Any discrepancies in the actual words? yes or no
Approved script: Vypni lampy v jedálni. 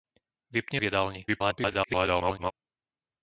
yes